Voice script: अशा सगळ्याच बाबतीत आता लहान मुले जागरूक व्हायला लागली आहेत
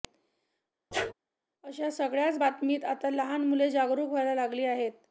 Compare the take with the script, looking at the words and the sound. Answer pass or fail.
fail